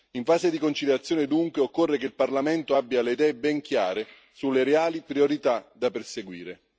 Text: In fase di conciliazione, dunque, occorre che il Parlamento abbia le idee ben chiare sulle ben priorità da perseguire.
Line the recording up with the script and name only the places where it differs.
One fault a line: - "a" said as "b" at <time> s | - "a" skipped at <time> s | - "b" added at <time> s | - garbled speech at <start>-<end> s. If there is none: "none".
- "ben" said as "reali" at 4.6 s